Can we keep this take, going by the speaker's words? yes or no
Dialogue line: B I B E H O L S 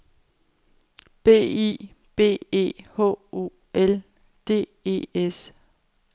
no